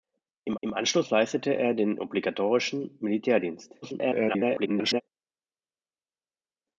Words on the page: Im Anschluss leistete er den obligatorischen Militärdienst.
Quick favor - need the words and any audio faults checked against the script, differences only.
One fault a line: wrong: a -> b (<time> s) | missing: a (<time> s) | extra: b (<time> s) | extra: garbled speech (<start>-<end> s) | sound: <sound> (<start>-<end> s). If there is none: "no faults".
extra: im (0.6 s)
extra: garbled speech (3.8-5.0 s)